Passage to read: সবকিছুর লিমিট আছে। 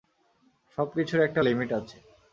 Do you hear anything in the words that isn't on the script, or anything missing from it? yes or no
yes